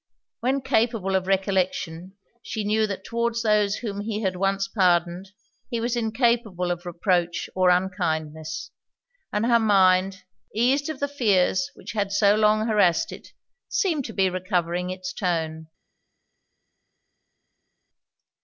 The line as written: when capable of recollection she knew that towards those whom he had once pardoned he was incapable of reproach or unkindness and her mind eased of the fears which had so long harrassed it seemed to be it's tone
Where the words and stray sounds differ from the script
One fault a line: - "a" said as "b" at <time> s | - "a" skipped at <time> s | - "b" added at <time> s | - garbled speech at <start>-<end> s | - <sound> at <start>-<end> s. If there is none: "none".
- "recovering" added at 14.3 s